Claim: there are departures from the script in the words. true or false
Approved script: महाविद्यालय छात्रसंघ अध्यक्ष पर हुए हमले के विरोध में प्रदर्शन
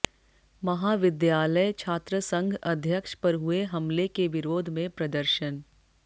false